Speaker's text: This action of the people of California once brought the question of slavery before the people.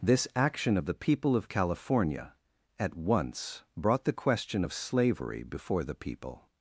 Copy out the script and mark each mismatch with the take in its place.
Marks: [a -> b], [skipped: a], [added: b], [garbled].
This action of the people of California [added: at] once brought the question of slavery before the people.